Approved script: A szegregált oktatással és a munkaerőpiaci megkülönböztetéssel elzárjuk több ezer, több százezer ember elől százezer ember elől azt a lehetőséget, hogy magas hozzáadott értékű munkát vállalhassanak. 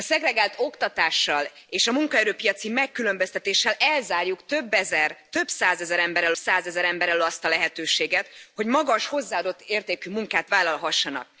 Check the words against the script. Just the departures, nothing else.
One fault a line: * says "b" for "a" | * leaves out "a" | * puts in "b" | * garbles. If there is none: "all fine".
all fine